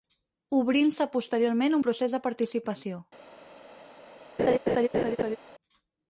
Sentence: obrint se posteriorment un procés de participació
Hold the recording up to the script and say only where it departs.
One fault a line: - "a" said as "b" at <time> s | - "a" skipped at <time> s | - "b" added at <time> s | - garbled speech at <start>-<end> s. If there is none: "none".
none